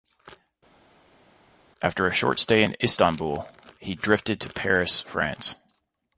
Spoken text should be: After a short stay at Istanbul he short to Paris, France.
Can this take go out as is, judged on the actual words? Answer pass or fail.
fail